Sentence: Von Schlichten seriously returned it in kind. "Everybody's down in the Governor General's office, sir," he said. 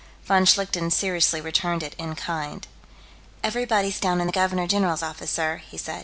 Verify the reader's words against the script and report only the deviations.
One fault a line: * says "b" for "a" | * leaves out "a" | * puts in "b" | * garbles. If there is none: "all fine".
all fine